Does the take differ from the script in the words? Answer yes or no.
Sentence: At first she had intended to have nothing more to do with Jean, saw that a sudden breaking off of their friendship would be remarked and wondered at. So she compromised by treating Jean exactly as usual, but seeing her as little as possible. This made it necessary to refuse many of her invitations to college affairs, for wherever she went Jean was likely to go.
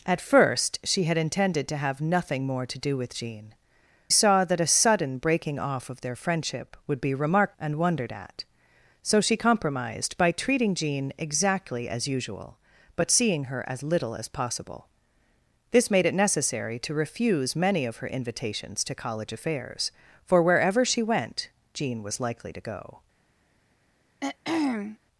no